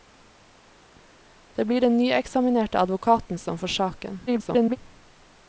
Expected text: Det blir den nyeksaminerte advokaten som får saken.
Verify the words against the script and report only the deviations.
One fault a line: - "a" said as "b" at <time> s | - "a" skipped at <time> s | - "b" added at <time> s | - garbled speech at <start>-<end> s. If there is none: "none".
- garbled speech at 4.3-4.8 s